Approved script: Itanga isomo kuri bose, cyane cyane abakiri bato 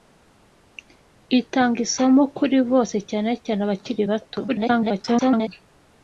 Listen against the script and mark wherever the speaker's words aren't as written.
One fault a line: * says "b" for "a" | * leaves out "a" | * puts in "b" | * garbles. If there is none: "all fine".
* garbles